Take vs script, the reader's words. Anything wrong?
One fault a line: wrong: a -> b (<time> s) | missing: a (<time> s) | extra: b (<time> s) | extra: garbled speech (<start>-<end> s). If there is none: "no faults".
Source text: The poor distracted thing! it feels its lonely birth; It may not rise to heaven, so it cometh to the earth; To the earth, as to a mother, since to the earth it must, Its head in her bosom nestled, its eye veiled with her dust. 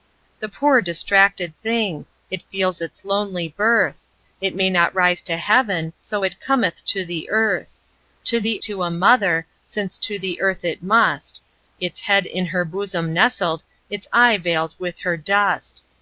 missing: earth as (8.6 s)